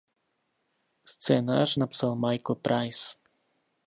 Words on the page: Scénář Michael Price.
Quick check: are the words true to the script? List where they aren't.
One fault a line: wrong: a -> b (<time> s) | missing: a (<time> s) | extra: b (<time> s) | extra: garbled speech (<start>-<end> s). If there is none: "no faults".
extra: napsal (1.7 s)